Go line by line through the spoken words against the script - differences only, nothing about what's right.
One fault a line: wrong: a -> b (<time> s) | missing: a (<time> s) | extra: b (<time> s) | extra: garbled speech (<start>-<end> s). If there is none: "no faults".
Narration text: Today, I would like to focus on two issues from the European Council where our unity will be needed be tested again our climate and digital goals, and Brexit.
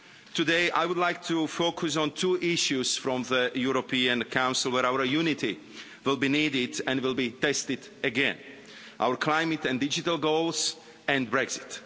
extra: and will (6.9 s)